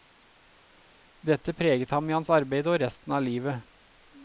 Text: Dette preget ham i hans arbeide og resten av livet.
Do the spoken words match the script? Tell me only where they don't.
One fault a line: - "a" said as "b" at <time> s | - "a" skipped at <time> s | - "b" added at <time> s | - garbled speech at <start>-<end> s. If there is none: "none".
none